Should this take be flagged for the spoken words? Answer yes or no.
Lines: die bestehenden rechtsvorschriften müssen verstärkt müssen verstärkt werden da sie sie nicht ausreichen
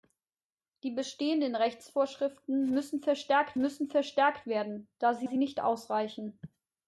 no